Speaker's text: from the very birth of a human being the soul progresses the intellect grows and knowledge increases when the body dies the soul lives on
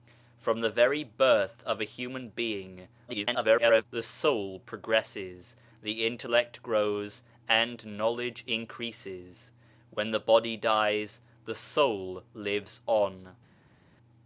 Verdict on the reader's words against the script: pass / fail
fail